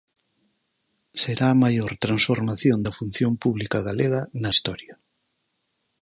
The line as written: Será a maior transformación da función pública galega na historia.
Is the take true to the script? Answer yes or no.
yes